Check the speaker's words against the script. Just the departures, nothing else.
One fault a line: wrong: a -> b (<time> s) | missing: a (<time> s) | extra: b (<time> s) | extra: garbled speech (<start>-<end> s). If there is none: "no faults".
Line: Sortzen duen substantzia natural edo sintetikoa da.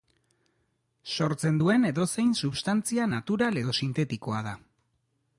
extra: edozein (1.9 s)